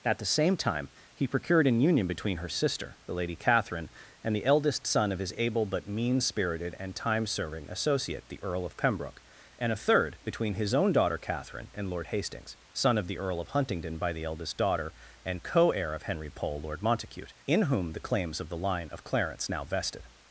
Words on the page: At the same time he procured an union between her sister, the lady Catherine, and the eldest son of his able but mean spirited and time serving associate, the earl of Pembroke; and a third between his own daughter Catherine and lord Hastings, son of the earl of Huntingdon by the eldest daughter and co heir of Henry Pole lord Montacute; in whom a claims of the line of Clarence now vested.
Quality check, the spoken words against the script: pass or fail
fail